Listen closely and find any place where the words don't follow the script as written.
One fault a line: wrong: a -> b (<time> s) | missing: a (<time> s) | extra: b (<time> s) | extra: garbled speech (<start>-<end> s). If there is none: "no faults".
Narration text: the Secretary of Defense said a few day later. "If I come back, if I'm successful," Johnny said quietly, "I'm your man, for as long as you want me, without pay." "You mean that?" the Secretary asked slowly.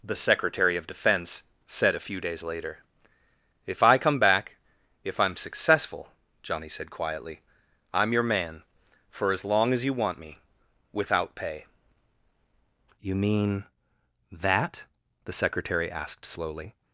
wrong: day -> days (2.2 s)